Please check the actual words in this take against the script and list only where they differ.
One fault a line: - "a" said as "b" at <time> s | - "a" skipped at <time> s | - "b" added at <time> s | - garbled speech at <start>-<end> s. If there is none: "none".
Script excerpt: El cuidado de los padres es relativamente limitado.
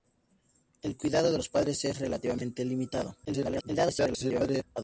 - garbled speech at 3.2-4.6 s